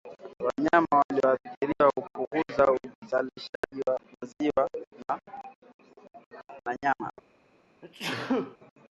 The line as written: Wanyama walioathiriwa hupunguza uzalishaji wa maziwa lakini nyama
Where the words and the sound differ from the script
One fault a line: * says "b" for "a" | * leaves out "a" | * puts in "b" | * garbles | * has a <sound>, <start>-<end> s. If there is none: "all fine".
* has a dropout, 3.6-3.6 s
* says "na" for "lakini"
* has a sneeze, 7.8-8.6 s